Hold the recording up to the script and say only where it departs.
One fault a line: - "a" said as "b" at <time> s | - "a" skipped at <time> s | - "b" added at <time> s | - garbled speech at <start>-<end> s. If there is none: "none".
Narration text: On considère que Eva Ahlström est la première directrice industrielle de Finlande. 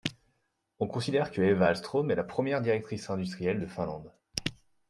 none